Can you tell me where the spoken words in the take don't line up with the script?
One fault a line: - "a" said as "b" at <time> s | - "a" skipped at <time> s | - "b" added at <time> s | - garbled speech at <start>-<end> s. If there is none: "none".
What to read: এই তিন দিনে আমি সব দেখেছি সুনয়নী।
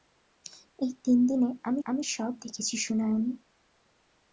- "আমি" added at 1.8 s